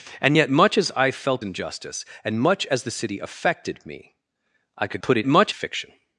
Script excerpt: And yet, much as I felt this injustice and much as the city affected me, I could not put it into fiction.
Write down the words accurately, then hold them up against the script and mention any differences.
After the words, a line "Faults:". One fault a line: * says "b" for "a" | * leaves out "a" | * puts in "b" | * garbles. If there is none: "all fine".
And yet, much as I felt injustice and much as the city affected me, I could put it much fiction.
Faults:
* leaves out "this"
* leaves out "not"
* says "much" for "into"